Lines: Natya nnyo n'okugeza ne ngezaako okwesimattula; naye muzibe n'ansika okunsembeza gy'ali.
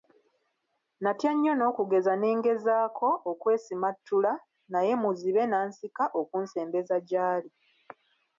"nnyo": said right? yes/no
yes